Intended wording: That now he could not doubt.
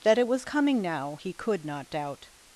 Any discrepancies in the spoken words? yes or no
yes